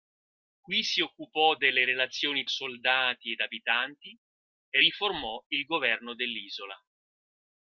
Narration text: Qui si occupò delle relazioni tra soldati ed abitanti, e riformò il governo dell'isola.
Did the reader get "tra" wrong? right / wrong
wrong